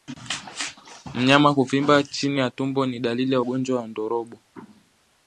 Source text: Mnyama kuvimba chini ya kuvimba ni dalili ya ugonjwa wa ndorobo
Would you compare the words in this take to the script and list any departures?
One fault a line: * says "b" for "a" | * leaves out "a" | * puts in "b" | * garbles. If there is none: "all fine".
* says "tumbo" for "kuvimba"